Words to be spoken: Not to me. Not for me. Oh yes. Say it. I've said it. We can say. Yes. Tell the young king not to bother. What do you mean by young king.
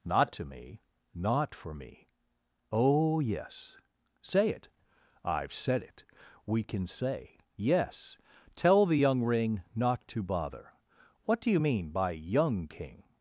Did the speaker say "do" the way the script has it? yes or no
yes